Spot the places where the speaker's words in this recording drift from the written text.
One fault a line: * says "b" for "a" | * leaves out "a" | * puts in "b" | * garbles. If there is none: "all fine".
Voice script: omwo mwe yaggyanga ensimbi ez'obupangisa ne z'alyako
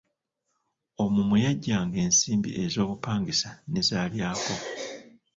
all fine